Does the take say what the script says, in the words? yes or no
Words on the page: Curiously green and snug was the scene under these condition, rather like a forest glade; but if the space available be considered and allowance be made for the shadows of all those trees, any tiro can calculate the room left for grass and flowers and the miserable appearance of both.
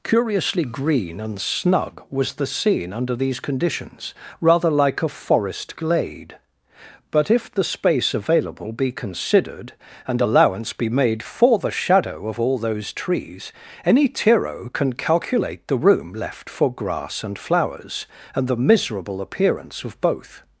no